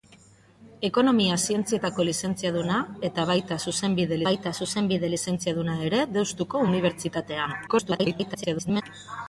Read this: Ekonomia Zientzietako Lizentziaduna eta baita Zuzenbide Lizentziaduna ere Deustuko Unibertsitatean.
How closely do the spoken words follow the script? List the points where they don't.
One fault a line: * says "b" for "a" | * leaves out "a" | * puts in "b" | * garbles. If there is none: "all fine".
* puts in "baita Zuzenbide"
* garbles